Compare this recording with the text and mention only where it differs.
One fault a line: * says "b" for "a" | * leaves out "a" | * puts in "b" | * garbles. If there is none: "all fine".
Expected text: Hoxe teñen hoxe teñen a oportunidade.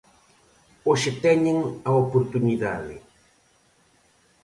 * leaves out "hoxe teñen"